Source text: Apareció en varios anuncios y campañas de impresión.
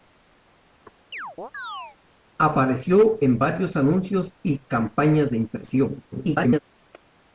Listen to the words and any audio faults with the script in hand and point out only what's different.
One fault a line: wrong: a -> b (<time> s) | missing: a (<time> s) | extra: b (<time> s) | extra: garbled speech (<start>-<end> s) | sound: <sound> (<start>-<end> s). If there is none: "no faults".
sound: chirp (1.1-2.0 s)
extra: garbled speech (6.1-6.6 s)